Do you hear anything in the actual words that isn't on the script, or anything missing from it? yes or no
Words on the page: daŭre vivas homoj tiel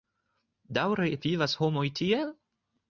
no